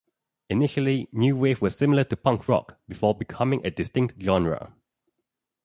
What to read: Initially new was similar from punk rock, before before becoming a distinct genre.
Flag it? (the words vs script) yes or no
yes